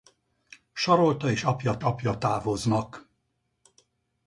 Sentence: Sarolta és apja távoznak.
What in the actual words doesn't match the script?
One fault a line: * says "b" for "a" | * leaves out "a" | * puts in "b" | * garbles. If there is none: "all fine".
* puts in "apja"